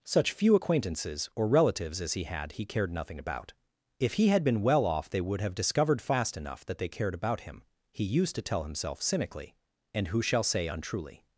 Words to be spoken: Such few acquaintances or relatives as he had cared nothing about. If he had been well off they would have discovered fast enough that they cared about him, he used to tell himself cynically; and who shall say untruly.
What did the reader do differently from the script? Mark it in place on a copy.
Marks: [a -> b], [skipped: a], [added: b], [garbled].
Such few acquaintances or relatives as he had [added: he] cared nothing about. If he had been well off they would have discovered fast enough that they cared about him, he used to tell himself cynically; and who shall say untruly.